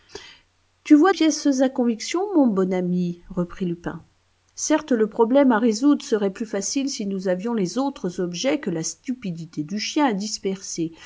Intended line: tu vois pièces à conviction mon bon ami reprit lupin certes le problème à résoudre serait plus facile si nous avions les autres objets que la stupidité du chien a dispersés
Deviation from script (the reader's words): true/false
false